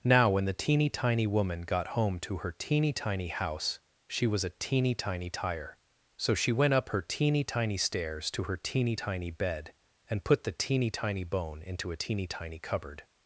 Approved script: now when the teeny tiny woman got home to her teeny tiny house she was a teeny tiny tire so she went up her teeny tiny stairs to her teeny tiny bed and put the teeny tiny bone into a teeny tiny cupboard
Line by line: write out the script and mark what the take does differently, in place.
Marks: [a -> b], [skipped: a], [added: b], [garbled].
now when the teeny tiny woman got home to her teeny tiny house she was a teeny tiny tire so she went up her teeny tiny stairs to her teeny tiny bed and put the teeny tiny bone into a teeny tiny cupboard